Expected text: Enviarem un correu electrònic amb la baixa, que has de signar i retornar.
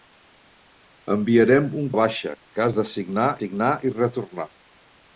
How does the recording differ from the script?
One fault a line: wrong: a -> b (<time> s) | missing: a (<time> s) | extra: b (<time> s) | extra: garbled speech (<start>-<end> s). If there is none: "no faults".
missing: correu electrònic amb (1.9 s)
extra: signar (3.4 s)